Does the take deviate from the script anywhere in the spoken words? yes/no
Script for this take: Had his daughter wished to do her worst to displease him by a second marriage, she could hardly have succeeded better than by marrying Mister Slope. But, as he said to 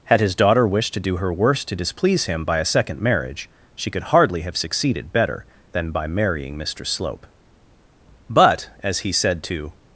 no